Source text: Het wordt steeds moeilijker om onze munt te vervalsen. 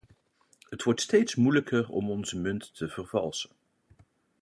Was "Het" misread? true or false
false